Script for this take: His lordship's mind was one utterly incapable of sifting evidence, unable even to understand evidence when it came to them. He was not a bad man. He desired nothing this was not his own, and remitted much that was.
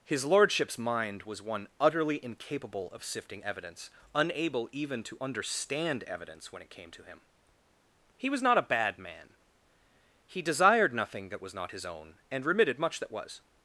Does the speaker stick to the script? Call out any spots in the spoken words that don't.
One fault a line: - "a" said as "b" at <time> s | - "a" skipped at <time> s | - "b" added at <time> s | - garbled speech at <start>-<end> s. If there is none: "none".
- "them" said as "him" at 7.0 s
- "this" said as "that" at 11.3 s